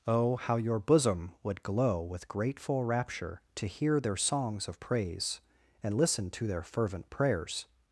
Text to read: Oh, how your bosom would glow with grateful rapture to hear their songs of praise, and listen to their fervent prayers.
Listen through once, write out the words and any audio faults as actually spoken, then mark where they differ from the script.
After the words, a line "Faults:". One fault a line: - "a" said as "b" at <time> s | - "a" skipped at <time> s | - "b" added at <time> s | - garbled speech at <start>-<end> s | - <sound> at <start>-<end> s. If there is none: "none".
Oh, how your bosom would glow with grateful rapture to hear their songs of praise, and listen to their fervent prayers.
Faults:
none